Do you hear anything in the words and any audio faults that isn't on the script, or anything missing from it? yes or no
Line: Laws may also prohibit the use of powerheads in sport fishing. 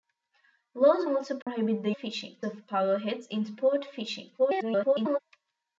yes